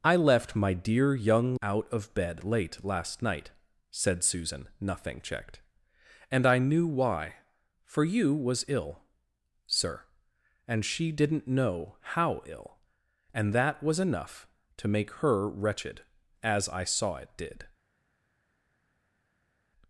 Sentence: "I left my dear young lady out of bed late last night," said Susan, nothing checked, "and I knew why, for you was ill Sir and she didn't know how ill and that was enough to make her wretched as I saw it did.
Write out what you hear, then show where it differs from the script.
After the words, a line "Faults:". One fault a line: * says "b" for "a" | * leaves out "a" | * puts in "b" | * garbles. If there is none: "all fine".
"I left my dear young out of bed late last night," said Susan, nothing checked, "and I knew why, for you was ill Sir and she didn't know how ill and that was enough to make her wretched as I saw it did.
Faults:
* leaves out "lady"